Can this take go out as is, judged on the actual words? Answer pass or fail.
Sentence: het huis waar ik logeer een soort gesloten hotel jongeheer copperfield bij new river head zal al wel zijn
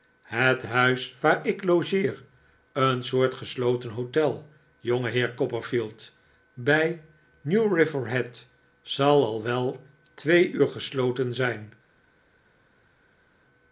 fail